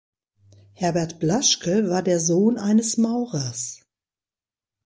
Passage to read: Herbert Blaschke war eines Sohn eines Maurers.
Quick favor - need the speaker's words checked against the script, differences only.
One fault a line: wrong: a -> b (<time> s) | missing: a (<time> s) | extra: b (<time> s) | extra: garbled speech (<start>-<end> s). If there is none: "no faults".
wrong: eines -> der (2.0 s)